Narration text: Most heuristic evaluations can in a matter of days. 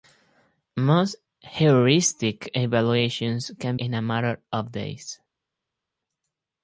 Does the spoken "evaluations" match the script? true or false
true